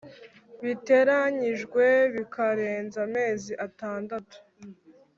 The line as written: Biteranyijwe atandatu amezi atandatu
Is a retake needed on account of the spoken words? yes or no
yes